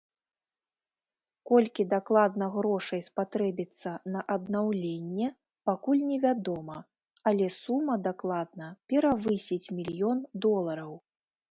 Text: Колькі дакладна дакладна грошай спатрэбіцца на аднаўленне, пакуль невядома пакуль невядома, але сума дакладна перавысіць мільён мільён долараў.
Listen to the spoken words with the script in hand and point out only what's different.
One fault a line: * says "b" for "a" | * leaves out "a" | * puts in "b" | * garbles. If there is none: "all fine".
* leaves out "дакладна"
* leaves out "пакуль невядома"
* leaves out "мільён"